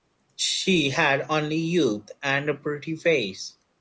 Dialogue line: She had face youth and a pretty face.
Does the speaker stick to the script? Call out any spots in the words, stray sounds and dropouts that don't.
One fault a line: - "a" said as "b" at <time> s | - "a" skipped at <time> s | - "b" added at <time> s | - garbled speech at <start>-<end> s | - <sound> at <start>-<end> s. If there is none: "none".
- "face" said as "only" at 1.3 s